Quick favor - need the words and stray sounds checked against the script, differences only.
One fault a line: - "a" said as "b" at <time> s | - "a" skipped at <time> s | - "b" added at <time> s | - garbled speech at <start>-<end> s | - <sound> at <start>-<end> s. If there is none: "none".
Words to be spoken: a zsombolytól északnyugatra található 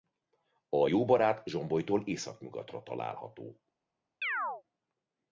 - "jóbarát" added at 0.8 s
- chirp at 4.2-4.6 s